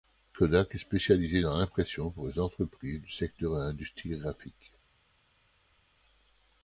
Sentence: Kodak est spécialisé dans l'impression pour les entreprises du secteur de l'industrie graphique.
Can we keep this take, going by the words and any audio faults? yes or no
yes